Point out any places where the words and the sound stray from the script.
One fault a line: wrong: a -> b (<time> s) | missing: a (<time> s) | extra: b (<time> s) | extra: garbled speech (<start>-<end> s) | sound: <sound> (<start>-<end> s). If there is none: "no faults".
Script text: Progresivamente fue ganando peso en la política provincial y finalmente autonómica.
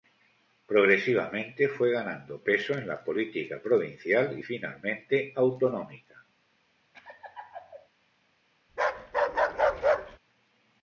sound: laugh (6.9-7.9 s)
sound: bark (8.7-10.2 s)